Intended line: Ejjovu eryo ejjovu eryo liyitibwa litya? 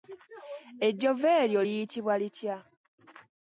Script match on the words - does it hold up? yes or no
no